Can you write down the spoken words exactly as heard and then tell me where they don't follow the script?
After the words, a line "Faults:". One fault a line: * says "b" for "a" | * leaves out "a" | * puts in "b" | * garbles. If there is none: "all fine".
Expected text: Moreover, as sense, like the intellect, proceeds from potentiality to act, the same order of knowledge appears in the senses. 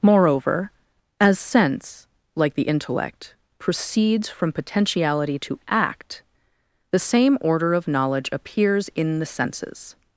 Moreover, as sense, like the intellect, proceeds from potentiality to act, the same order of knowledge appears in the senses.
Faults:
all fine